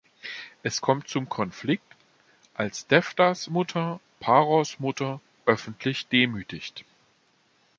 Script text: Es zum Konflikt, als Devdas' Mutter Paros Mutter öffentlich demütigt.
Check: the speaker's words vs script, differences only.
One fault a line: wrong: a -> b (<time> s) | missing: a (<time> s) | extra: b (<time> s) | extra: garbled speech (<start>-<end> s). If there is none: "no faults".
extra: kommt (0.8 s)